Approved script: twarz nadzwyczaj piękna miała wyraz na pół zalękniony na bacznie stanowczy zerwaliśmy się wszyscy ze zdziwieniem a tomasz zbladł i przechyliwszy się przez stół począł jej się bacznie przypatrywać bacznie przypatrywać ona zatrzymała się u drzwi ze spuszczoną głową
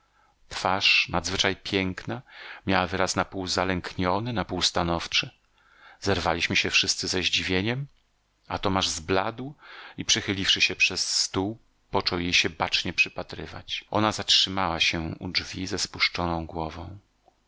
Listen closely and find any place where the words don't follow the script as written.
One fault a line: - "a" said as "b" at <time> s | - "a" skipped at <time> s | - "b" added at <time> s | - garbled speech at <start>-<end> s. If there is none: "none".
- "bacznie" said as "pół" at 4.4 s
- "bacznie przypatrywać" skipped at 13.8 s